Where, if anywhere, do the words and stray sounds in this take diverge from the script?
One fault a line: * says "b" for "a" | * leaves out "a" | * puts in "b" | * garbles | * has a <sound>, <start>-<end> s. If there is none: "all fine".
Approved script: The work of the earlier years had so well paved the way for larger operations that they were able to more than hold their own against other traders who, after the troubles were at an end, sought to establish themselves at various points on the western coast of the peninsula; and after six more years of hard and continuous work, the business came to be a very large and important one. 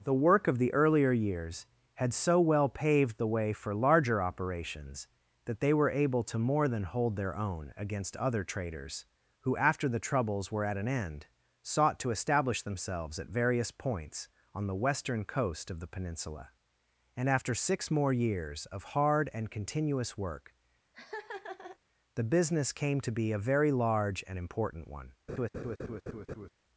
* has a laugh, 20.9-21.8 s
* has a laugh, 25.3-26.5 s